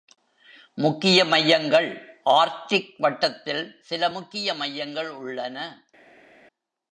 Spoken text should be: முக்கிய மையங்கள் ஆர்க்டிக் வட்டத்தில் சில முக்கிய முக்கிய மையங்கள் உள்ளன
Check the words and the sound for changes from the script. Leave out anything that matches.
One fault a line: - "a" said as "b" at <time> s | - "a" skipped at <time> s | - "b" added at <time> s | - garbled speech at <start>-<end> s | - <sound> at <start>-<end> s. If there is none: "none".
- "முக்கிய" skipped at 4.5 s